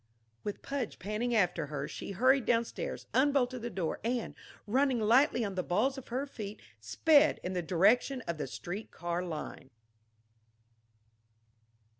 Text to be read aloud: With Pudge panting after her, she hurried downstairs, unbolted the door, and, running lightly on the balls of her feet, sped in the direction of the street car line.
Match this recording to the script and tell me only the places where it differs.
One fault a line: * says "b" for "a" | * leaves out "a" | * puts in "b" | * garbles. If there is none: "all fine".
all fine